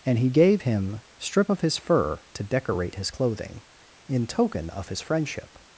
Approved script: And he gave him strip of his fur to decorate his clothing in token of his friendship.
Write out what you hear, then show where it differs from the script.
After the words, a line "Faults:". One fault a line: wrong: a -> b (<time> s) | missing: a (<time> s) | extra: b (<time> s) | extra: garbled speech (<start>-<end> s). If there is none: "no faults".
And he gave him strip of his fur to decorate his clothing in token of his friendship.
Faults:
no faults